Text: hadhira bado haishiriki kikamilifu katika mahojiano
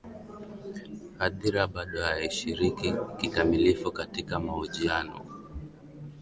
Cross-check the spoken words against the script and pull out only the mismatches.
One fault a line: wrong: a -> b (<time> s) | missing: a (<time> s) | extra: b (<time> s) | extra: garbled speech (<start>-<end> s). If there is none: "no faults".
no faults